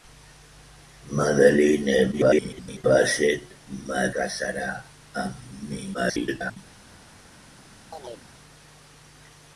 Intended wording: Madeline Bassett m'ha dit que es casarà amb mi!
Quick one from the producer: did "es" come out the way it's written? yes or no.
no